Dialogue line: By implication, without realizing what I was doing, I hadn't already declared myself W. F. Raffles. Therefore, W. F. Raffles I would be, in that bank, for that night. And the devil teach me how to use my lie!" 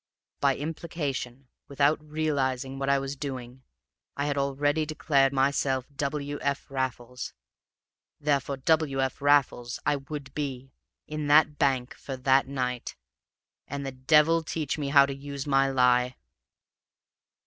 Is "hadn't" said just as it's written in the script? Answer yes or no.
no